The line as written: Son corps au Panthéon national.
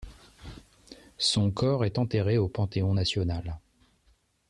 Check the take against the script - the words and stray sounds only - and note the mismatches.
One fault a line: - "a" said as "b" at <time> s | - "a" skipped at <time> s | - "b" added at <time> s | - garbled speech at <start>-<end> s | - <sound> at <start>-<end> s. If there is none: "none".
- "est enterré" added at 1.9 s